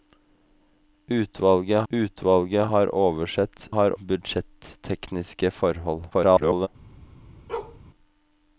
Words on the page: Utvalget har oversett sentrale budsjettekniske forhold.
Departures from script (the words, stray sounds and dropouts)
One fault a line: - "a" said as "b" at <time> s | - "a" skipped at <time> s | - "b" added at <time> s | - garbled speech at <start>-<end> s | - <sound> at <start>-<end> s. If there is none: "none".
- "utvalget" added at 1.9 s
- "sentrale" said as "har" at 3.7 s
- garbled speech at 6.1-6.7 s
- bark at 7.5-7.8 s